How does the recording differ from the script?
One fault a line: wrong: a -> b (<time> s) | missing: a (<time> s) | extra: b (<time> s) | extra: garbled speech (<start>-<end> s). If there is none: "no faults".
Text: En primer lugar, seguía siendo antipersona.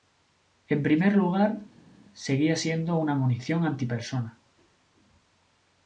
extra: una munición (3.0 s)